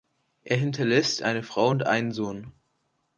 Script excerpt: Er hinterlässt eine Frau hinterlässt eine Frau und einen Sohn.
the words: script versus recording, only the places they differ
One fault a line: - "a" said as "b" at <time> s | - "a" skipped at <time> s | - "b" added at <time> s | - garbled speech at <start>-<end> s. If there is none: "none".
- "hinterlässt eine Frau" skipped at 1.7 s